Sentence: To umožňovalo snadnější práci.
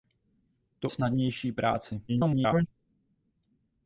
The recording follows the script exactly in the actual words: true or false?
false